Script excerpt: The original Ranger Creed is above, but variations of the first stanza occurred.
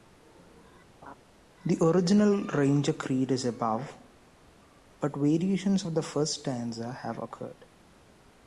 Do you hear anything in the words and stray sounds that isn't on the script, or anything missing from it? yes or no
yes